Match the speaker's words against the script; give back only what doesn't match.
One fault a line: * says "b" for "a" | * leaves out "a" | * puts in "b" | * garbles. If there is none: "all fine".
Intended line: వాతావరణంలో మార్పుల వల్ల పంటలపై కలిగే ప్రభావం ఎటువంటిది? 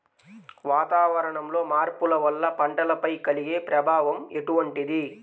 all fine